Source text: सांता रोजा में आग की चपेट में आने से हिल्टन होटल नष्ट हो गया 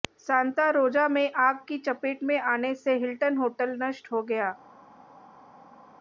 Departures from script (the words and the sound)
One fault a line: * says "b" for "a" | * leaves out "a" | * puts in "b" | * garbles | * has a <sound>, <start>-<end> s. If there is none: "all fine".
all fine